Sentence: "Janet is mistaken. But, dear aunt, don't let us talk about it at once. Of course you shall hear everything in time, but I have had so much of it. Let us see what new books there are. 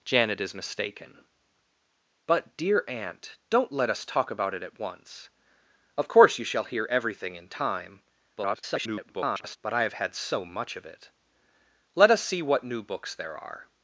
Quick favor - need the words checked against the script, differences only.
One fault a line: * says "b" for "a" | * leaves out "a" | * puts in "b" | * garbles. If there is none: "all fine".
* garbles